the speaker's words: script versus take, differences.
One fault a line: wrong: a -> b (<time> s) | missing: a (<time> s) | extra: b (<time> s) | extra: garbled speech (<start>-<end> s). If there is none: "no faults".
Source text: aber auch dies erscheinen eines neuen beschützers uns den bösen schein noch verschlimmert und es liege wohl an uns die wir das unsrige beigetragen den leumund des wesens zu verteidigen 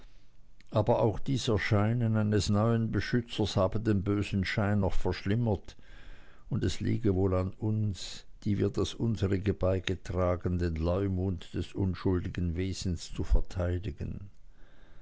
wrong: uns -> habe (3.6 s)
extra: unschuldigen (11.7 s)